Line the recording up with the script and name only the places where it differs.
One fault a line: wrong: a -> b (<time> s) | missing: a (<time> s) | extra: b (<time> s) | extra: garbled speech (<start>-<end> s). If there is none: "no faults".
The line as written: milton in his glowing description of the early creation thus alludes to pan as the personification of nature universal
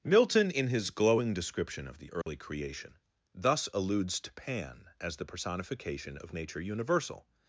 no faults